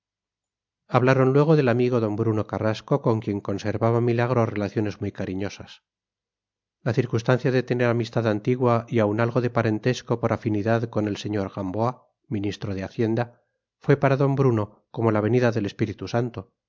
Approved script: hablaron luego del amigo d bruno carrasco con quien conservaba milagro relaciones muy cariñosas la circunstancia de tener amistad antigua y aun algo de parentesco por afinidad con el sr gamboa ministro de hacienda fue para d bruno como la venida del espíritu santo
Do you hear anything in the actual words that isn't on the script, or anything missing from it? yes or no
no